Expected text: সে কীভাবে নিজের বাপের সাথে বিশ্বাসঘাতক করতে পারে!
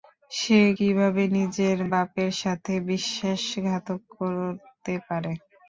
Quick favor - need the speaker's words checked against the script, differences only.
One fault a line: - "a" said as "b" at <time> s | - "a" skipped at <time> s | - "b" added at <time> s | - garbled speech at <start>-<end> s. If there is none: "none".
none